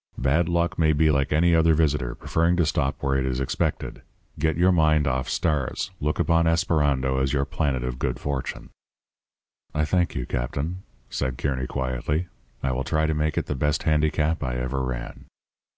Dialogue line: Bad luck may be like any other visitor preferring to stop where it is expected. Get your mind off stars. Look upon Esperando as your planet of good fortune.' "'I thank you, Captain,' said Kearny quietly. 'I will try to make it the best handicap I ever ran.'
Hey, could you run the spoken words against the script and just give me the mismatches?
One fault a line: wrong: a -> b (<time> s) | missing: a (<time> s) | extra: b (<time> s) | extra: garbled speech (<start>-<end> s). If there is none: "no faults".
no faults